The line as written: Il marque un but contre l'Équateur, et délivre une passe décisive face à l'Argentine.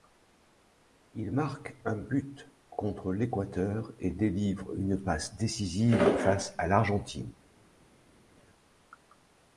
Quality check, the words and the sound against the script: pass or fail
pass